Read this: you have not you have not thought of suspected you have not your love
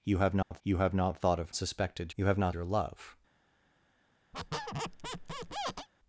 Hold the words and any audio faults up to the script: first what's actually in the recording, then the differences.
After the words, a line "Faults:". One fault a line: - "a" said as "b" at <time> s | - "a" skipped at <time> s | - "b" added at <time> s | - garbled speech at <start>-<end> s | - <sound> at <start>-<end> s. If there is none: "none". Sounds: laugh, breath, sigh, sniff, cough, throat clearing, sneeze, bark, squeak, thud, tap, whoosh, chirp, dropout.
you have not you have not thought of suspected you have not your love
Faults:
- dropout at 0.4-0.5 s
- squeak at 4.3-5.9 s